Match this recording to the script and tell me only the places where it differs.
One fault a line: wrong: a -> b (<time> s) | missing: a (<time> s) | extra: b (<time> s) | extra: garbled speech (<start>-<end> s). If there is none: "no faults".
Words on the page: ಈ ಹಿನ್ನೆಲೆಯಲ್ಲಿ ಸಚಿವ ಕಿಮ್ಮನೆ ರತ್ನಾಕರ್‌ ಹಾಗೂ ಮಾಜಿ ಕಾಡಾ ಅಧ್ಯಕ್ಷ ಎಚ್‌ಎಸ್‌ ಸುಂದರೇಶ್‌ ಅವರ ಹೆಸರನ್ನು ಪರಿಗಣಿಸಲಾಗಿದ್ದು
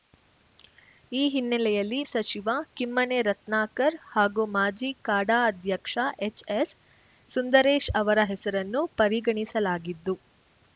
no faults